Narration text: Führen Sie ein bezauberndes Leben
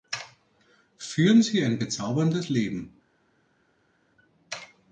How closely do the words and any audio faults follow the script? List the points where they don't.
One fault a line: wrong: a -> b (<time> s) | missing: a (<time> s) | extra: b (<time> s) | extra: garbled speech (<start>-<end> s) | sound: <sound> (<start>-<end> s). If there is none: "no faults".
no faults